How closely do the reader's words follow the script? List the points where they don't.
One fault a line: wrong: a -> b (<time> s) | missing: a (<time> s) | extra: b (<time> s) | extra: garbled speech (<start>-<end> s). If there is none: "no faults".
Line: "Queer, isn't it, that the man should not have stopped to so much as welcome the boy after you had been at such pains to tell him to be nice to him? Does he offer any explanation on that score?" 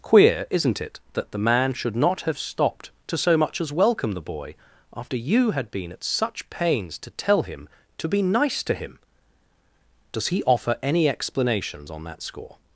wrong: explanation -> explanations (11.1 s)